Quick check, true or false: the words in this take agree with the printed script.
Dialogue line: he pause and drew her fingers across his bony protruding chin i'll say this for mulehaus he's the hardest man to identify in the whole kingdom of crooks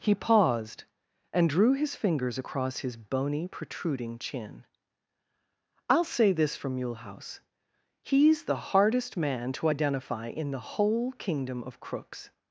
false